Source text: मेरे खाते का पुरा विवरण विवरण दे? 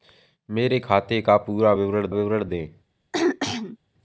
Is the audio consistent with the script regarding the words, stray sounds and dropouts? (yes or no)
no